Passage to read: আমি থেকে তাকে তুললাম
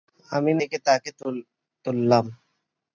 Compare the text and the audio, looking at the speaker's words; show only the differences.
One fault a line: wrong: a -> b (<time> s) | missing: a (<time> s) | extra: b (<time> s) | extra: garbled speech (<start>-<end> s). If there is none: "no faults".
no faults